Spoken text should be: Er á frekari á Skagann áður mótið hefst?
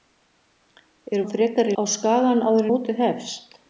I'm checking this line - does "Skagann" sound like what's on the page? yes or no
yes